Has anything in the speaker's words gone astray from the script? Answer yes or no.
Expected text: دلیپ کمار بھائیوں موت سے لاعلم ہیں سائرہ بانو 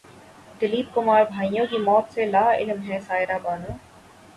yes